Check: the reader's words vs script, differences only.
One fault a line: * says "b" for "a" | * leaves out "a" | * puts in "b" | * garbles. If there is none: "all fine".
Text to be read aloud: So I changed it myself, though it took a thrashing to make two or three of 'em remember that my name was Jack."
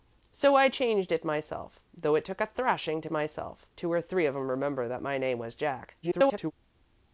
* says "myself" for "make"
* garbles